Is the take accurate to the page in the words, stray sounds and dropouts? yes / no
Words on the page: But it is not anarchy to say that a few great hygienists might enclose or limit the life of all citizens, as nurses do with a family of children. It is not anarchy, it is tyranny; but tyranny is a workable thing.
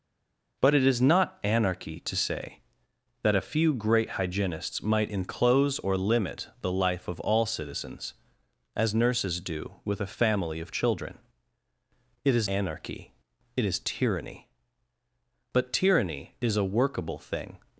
no